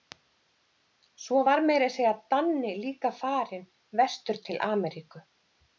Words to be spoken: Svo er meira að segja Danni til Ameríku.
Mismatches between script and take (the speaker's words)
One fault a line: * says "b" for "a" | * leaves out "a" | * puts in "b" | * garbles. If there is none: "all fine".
* says "var" for "er"
* puts in "líka farinn vestur"